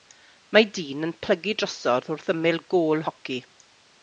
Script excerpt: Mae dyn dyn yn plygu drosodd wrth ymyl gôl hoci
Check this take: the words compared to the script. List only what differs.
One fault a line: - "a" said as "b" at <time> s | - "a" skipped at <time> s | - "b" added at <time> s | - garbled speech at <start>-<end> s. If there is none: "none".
- "dyn" skipped at 1.1 s